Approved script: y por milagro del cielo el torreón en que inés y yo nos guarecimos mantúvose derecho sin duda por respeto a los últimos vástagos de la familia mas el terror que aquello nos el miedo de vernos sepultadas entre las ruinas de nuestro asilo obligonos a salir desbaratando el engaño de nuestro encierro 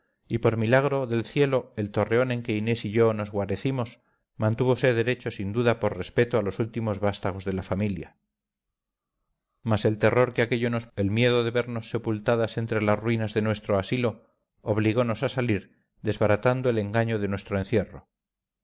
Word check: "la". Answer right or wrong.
right